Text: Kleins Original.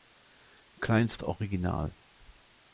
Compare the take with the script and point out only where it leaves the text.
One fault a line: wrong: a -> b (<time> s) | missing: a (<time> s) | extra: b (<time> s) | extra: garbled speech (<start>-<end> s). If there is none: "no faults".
no faults